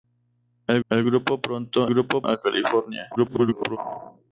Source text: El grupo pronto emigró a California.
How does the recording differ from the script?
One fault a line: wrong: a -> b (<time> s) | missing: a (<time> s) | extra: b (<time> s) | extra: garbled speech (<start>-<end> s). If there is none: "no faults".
extra: el (0.9 s)
wrong: emigró -> grupo (1.9 s)
extra: garbled speech (3.2-3.8 s)